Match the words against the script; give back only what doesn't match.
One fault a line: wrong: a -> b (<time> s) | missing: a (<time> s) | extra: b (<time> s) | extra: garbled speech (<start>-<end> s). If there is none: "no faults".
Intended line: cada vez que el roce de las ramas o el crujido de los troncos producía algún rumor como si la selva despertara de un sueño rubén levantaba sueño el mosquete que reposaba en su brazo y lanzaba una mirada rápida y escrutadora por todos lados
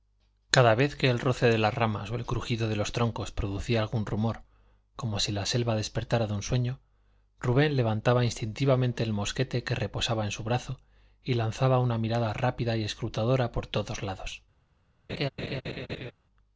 wrong: sueño -> instintivamente (8.2 s)